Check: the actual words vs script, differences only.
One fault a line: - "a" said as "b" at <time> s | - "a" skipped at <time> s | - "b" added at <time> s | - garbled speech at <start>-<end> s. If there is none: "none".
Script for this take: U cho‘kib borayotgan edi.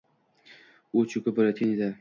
none